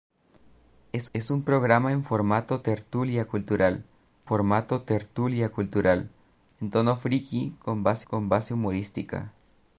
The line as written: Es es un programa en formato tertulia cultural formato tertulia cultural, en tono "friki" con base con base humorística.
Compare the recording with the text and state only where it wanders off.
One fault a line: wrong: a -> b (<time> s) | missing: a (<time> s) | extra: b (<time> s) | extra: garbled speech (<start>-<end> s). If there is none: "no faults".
no faults